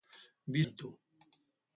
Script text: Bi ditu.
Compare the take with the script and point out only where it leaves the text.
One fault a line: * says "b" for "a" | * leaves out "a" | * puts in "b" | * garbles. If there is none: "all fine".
all fine